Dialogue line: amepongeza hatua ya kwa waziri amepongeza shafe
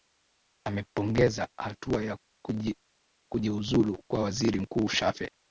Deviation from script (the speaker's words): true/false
true